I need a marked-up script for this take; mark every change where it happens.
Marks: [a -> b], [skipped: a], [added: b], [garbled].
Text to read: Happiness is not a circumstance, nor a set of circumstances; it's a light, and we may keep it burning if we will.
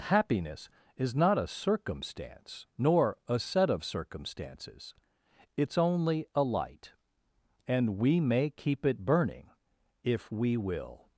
Happiness is not a circumstance, nor a set of circumstances; it's [added: only] a light, and we may keep it burning if we will.